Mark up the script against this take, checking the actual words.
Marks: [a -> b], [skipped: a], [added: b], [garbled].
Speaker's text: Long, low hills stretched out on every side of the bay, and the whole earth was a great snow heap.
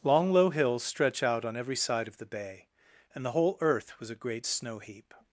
Long, low hills [stretched -> stretch] out on every side of the bay, and the whole earth was a great snow heap.